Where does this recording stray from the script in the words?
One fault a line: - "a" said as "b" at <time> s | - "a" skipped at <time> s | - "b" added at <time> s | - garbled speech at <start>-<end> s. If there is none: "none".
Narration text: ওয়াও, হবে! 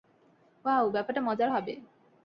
- "ব্যাপারটা মজার" added at 0.9 s